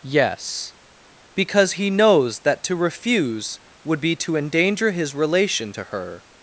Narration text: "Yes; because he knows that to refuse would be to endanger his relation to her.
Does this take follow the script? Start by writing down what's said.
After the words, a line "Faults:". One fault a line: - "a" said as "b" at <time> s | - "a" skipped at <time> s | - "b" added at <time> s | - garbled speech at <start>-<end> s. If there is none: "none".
"Yes; because he knows that to refuse would be to endanger his relation to her.
Faults:
none